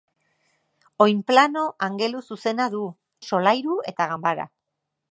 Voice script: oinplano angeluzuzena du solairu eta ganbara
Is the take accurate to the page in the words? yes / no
yes